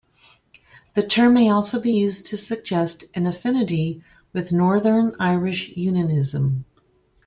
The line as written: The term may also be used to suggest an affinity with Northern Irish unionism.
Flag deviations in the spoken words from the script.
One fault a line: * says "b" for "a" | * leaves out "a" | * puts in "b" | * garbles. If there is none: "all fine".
all fine